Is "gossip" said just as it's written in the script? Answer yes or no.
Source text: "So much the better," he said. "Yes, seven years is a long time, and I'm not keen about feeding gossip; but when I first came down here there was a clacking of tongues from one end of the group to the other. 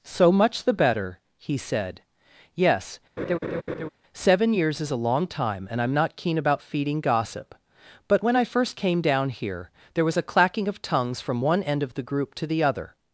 yes